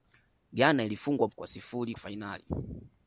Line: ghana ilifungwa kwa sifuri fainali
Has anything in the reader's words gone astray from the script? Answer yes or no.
no